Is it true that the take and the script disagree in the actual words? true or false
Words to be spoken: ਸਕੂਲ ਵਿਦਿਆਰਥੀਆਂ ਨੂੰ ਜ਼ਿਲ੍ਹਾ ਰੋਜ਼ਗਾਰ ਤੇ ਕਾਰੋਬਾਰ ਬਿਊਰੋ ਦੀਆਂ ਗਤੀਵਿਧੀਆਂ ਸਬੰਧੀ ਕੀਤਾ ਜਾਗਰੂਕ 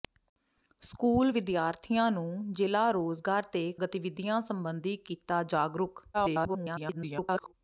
true